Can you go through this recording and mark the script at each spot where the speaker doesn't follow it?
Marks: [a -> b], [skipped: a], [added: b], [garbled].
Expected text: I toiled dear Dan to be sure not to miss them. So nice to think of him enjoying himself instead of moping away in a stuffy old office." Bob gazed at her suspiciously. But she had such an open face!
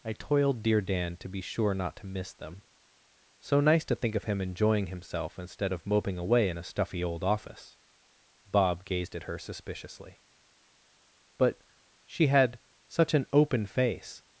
I toiled dear Dan to be sure not to miss them. So nice to think of him enjoying himself instead of moping away in a stuffy old office." Bob gazed at her suspiciously. But she had such an open face!